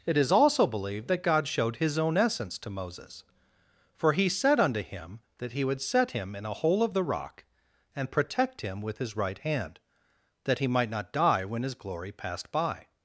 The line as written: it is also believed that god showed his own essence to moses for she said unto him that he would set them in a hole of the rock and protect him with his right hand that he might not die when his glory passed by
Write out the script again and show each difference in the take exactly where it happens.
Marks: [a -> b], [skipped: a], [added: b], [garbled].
it is also believed that god showed his own essence to moses for [she -> he] said unto him that he would set [them -> him] in a hole of the rock and protect him with his right hand that he might not die when his glory passed by